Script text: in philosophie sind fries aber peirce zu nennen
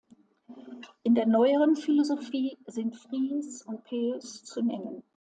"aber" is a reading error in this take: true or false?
true